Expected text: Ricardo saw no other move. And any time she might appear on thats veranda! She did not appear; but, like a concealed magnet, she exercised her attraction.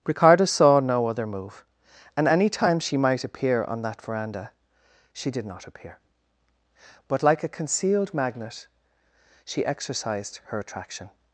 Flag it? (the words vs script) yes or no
yes